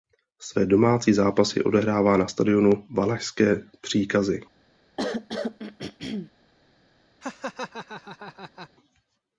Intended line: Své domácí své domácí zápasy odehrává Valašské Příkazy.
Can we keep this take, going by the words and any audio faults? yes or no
no